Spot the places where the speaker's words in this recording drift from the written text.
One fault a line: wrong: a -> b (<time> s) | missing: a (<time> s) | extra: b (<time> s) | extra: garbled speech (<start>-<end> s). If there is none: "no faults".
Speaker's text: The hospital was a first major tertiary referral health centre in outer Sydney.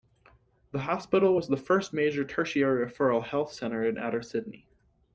wrong: a -> the (1.5 s)